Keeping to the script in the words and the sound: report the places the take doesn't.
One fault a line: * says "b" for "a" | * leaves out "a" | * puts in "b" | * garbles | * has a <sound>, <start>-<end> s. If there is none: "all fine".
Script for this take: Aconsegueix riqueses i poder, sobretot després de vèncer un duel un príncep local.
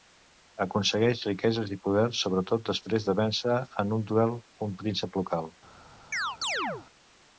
* puts in "en"
* has a chirp, 6.1-6.9 s